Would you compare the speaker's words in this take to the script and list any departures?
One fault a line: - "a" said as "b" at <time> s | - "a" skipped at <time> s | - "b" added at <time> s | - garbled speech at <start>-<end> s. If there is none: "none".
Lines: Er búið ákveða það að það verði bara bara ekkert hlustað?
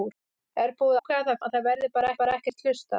none